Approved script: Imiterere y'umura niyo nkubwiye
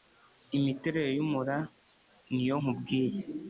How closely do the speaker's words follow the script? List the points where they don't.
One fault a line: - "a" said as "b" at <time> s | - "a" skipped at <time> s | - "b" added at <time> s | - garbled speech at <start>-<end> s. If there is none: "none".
none